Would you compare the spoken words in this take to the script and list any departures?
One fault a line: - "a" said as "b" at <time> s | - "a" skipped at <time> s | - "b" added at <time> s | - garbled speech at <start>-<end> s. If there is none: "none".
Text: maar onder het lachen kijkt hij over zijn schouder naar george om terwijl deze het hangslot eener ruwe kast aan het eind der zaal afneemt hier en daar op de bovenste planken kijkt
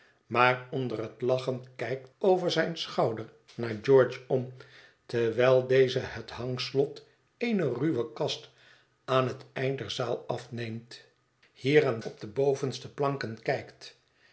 - "hij" skipped at 2.1 s
- "daar" skipped at 12.0 s